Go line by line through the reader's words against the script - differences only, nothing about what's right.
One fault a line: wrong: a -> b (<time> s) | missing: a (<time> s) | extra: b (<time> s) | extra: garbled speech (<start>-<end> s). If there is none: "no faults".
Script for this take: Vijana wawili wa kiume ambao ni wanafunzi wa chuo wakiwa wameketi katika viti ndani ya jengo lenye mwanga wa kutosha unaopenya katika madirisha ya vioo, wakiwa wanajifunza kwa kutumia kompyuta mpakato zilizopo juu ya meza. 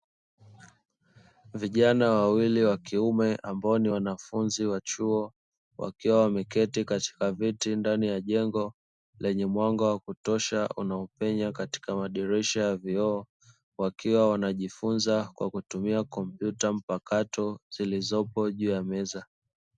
no faults